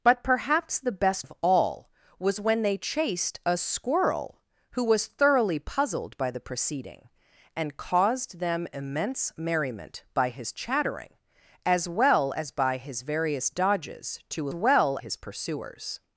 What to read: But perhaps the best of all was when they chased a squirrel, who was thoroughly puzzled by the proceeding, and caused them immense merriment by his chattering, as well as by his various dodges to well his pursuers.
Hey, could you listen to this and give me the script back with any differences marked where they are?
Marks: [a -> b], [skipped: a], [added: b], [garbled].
But perhaps the best of all was when they chased a squirrel, who was thoroughly puzzled by the proceeding, and caused them immense merriment by his chattering, as well as by his various dodges to well his pursuers.